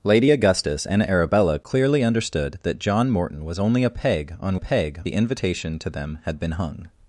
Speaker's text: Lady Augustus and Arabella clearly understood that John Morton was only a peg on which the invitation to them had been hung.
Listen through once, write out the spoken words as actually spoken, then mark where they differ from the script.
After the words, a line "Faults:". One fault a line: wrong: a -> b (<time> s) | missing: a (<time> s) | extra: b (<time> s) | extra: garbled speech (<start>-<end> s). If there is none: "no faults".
Lady Augustus and Arabella clearly understood that John Morton was only a peg on peg the invitation to them had been hung.
Faults:
wrong: which -> peg (4.6 s)